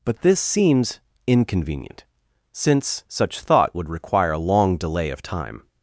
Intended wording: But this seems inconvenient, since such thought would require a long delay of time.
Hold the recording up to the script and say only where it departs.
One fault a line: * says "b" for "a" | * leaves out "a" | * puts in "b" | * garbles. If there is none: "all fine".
all fine